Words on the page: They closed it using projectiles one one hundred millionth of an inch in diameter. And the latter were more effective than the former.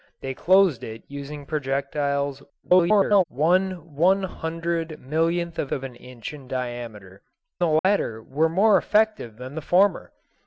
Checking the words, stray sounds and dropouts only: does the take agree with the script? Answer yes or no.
no